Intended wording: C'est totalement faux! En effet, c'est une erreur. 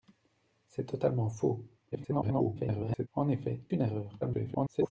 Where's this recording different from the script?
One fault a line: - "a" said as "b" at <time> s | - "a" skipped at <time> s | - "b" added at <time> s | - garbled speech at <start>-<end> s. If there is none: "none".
- garbled speech at 1.9-3.1 s
- "c'est" skipped at 3.6 s
- garbled speech at 4.2-4.9 s